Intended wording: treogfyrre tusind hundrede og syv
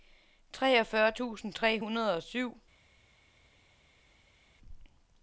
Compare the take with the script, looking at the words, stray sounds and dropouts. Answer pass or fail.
fail